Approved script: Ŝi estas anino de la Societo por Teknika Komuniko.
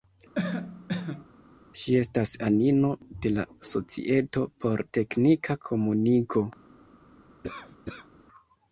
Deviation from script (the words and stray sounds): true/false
true